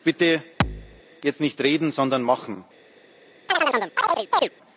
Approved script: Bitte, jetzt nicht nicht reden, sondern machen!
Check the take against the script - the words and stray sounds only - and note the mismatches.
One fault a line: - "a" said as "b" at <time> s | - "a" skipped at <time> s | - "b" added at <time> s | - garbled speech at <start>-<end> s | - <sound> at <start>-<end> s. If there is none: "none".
- thud at 0.6-1.0 s
- "nicht" skipped at 1.6 s
- chirp at 3.5-4.5 s